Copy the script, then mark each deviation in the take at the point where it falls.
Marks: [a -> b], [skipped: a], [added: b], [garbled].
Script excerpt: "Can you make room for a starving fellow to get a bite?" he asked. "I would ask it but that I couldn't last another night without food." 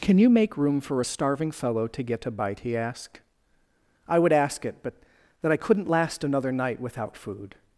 "Can you make room for a starving fellow to get a bite?" he asked. "I would ask it but that I couldn't last another night without food."